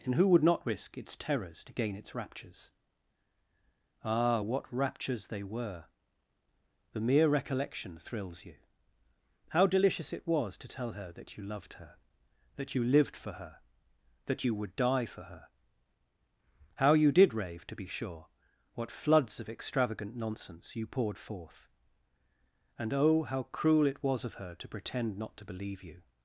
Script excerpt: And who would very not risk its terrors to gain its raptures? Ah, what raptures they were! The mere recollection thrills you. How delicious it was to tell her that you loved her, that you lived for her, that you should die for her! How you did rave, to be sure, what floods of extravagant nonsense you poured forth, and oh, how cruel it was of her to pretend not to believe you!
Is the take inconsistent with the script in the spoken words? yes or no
yes